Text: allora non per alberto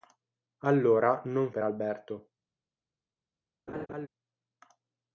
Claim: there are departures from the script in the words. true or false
false